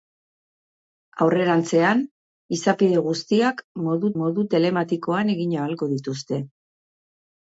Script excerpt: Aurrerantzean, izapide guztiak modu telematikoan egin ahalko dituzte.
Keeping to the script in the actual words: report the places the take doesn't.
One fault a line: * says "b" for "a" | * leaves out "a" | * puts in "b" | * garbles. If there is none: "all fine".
* puts in "modu"